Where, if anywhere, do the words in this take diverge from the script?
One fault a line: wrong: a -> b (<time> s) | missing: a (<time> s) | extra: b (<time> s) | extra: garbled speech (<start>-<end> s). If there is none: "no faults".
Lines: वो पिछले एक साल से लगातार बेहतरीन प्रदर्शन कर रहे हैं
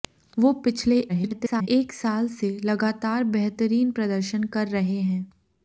extra: garbled speech (1.1-1.7 s)